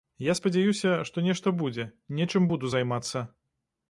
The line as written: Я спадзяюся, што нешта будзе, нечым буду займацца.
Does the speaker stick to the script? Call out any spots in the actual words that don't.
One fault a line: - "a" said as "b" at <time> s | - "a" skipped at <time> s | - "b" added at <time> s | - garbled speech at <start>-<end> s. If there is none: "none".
none